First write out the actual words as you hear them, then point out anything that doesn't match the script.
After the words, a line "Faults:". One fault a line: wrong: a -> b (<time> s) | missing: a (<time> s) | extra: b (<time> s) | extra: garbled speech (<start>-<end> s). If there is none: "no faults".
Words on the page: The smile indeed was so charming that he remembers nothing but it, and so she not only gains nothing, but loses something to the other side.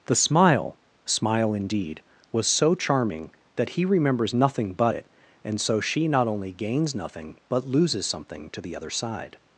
The smile smile indeed was so charming that he remembers nothing but it, and so she not only gains nothing, but loses something to the other side.
Faults:
extra: smile (1.1 s)